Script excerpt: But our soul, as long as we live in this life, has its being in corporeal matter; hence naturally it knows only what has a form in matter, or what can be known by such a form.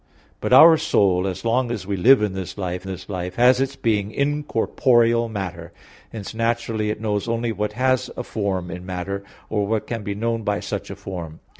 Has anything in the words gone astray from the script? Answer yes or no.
yes